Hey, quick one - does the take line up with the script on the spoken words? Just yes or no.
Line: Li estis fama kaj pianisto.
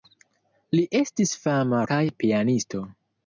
yes